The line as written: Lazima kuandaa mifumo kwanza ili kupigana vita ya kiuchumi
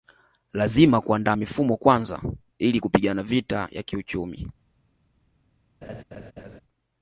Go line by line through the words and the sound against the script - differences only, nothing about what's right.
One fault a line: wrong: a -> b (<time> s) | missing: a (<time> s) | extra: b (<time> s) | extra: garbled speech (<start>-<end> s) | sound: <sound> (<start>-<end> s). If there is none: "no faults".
sound: laugh (5.8-6.6 s)